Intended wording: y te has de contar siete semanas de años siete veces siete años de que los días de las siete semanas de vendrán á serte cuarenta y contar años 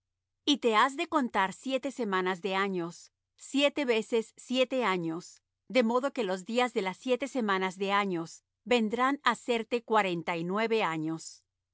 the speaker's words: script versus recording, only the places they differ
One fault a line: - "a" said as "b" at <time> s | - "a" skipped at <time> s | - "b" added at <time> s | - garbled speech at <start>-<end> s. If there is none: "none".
- "modo" added at 5.8 s
- "años" added at 7.9 s
- "contar" said as "nueve" at 10.4 s